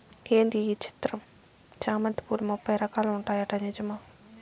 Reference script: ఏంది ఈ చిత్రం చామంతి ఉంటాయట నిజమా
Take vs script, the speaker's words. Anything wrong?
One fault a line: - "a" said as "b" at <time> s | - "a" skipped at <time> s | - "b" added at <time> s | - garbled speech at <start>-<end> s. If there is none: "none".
- "పూలు ముప్పై రకాలు" added at 2.2 s